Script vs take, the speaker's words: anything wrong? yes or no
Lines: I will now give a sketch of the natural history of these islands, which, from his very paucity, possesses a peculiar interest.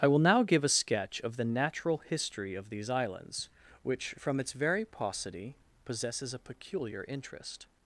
yes